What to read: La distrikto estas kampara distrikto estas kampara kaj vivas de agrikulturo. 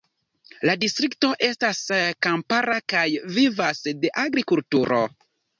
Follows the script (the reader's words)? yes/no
no